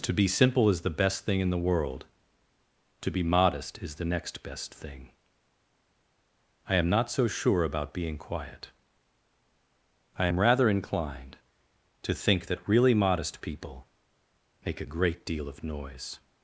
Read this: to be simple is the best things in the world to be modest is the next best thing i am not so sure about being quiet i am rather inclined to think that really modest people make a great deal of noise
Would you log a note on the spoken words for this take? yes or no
yes